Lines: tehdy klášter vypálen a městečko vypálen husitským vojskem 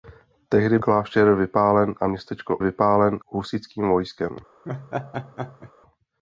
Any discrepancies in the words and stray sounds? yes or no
yes